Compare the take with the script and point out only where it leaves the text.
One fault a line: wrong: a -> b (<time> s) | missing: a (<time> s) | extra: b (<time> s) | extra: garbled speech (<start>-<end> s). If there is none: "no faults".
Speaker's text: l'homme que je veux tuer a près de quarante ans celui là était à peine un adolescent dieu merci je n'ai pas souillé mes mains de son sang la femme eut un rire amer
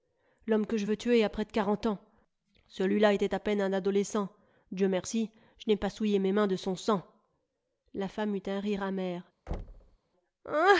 no faults